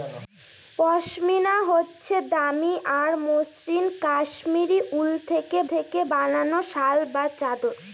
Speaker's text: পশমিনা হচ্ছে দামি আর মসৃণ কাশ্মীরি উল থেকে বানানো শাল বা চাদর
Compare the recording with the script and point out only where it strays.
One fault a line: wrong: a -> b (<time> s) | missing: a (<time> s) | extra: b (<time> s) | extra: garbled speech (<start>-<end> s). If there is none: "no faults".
extra: থেকে (5.7 s)